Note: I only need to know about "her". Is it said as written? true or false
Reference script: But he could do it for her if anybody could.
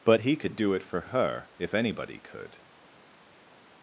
true